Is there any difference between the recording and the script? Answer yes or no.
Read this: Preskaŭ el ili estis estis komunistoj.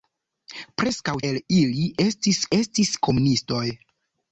no